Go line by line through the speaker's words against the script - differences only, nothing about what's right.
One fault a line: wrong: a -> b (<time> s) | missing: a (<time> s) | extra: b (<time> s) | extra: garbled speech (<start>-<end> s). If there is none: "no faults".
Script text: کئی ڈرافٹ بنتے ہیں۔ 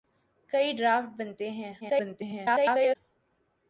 extra: garbled speech (1.8-3.0 s)